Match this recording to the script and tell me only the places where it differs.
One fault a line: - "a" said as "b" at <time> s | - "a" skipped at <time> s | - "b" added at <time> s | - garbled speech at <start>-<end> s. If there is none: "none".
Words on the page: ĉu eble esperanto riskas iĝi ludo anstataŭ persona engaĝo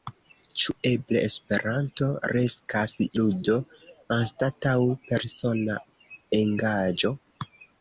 - "iĝi" skipped at 3.0 s